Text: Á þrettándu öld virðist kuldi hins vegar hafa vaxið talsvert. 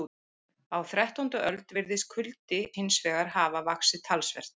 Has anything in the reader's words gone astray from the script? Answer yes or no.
no